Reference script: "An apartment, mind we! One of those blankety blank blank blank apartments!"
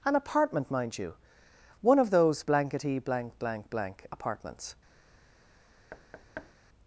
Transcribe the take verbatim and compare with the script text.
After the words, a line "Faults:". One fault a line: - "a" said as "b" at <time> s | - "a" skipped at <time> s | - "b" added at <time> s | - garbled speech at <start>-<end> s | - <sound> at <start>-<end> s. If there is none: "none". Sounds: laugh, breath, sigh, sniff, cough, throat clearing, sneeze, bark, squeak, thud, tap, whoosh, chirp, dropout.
"An apartment, mind you! One of those blankety blank blank blank apartments!"
Faults:
- "we" said as "you" at 1.0 s
- thud at 5.9-6.5 s